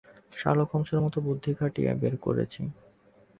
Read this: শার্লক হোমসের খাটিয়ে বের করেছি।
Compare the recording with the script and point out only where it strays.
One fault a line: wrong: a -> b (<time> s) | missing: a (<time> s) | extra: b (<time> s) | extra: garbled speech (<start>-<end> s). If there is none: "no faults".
extra: মতো বুদ্ধি (1.0 s)